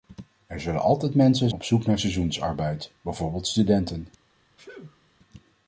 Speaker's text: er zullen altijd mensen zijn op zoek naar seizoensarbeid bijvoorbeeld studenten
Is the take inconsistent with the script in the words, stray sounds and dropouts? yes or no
yes